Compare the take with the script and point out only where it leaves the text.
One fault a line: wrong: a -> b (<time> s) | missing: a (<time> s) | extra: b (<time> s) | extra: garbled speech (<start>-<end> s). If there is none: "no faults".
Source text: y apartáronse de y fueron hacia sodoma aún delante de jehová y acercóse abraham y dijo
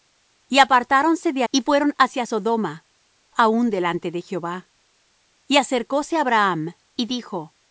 no faults